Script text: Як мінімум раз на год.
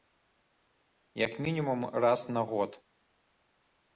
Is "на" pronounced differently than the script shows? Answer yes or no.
no